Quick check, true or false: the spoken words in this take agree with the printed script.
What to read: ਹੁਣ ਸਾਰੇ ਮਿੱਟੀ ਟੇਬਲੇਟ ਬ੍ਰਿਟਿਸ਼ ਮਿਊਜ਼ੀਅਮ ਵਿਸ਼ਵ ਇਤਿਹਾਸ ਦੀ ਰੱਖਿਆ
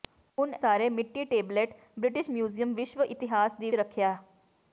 true